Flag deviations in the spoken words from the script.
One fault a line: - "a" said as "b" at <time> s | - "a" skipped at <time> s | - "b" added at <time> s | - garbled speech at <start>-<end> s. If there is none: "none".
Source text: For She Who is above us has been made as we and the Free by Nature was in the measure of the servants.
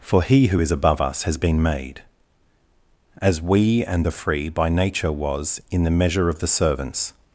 - "She" said as "He" at 0.2 s